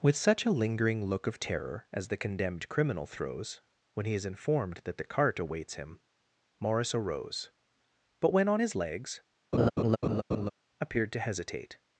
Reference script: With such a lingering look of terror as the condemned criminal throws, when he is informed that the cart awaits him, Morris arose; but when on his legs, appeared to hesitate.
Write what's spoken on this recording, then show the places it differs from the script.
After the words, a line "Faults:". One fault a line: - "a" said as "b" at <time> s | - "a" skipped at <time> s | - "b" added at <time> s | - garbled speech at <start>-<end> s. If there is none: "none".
With such a lingering look of terror as the condemned criminal throws, when he is informed that the cart awaits him, Morris arose; but when on his legs, appeared to hesitate.
Faults:
none